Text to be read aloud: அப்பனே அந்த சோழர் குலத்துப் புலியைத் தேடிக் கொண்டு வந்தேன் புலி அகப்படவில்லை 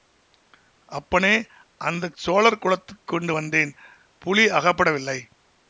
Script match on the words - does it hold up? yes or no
no